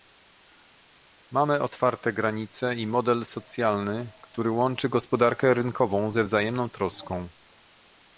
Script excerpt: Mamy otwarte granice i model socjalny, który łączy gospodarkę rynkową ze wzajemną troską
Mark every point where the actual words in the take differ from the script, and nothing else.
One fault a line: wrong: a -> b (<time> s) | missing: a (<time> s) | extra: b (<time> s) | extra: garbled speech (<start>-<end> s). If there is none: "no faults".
no faults